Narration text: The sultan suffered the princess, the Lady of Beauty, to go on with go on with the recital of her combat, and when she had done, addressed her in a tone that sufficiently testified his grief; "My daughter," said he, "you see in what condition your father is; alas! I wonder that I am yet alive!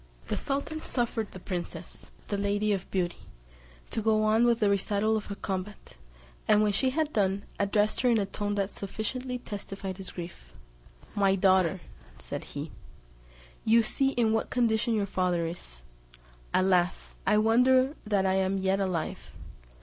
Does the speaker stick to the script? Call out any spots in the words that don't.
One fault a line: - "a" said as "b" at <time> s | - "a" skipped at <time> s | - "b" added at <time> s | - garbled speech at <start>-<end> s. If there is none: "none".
- "go on with" skipped at 4.6 s